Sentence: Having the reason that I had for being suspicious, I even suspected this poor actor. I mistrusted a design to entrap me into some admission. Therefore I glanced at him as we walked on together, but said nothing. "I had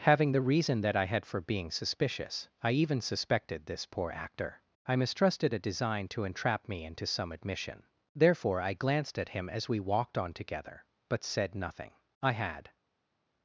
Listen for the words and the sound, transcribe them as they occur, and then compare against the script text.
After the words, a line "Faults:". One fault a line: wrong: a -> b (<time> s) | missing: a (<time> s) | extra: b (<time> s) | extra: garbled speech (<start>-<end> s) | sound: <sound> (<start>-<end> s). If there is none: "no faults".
Having the reason that I had for being suspicious, I even suspected this poor actor. I mistrusted a design to entrap me into some admission. Therefore I glanced at him as we walked on together, but said nothing. "I had
Faults:
no faults